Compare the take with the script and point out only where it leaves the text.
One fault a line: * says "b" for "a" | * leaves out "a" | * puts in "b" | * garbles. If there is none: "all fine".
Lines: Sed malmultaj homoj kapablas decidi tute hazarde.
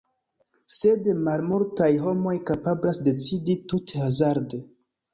all fine